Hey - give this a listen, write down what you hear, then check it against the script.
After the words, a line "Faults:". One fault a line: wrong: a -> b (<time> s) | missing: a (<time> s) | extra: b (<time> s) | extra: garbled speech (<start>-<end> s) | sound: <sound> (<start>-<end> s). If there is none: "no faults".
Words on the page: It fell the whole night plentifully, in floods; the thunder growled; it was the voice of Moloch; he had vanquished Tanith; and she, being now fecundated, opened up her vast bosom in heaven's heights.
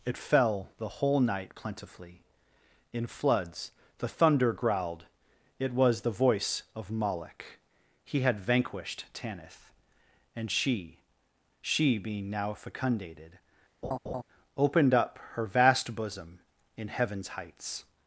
It fell the whole night plentifully, in floods; the thunder growled; it was the voice of Moloch; he had vanquished Tanith; and she she, being now fecundated, opened up her vast bosom in heaven's heights.
Faults:
extra: she (11.6 s)
sound: laugh (13.8-14.2 s)